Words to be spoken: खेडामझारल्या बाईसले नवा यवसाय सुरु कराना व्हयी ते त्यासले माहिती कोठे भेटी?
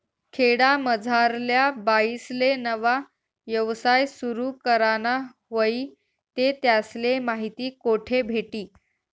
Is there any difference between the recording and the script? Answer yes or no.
no